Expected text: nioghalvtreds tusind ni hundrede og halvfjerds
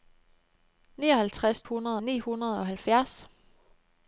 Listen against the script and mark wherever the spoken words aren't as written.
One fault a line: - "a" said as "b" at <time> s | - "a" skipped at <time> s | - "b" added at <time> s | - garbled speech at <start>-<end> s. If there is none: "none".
- "tusind" said as "hundrede" at 1.6 s